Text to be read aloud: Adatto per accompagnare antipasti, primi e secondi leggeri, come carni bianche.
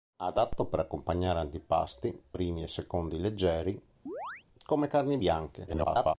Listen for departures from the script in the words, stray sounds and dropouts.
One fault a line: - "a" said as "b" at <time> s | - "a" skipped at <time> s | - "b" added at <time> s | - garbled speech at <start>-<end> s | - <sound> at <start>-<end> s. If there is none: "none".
- chirp at 4.1-4.4 s
- garbled speech at 5.7-6.1 s